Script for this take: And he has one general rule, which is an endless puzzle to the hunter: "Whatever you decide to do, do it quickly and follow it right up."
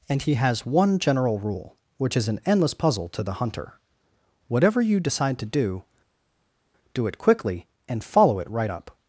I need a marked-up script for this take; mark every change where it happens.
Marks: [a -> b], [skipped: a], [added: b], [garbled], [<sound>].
And he has one general rule, which is an endless puzzle to the hunter: "Whatever you decide to do, do it quickly and follow it right up."